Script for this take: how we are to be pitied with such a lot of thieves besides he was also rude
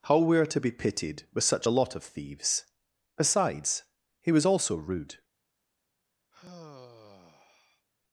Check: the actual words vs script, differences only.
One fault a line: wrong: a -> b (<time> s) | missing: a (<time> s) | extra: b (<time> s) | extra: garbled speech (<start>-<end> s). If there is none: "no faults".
no faults